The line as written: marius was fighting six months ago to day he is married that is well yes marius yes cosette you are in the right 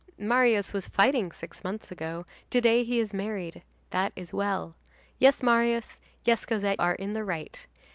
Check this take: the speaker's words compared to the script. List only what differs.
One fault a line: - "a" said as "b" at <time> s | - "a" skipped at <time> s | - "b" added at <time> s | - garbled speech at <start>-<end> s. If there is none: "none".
- "you" skipped at 6.8 s